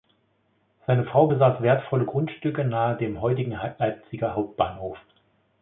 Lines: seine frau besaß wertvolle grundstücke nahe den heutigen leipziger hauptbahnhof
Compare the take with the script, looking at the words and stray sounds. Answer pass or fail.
fail